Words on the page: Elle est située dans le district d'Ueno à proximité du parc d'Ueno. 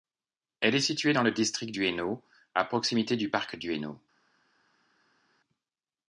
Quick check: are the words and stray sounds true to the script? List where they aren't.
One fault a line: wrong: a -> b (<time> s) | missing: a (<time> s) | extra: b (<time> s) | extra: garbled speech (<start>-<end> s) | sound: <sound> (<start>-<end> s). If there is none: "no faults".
no faults